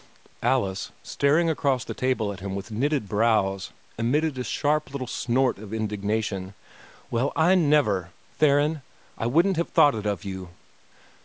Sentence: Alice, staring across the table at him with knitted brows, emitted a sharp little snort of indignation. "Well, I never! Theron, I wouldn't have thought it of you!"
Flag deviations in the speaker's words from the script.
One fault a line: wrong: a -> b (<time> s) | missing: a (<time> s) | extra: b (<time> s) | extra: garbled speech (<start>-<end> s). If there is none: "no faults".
no faults